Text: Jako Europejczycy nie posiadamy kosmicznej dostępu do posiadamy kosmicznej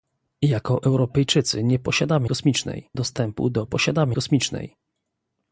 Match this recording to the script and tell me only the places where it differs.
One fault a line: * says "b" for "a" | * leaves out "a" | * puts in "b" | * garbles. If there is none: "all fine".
all fine